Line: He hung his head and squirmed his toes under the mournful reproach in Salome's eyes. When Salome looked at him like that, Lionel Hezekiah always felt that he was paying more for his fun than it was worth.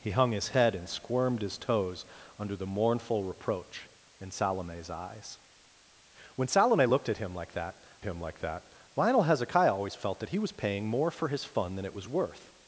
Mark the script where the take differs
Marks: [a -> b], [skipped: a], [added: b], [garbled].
He hung his head and squirmed his toes under the mournful reproach in Salome's eyes. When Salome looked at him like that, [added: him like that] Lionel Hezekiah always felt that he was paying more for his fun than it was worth.